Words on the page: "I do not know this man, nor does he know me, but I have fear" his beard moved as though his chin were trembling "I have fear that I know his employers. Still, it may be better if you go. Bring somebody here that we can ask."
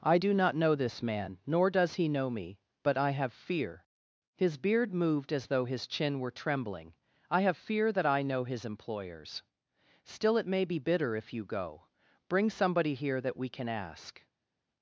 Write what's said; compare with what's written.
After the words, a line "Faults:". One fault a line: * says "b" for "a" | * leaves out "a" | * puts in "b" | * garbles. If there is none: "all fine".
"I do not know this man, nor does he know me, but I have fear" his beard moved as though his chin were trembling "I have fear that I know his employers. Still, it may be bitter if you go. Bring somebody here that we can ask."
Faults:
* says "bitter" for "better"